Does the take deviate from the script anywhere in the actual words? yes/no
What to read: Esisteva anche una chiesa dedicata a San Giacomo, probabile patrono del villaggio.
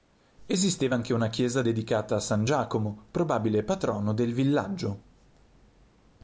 no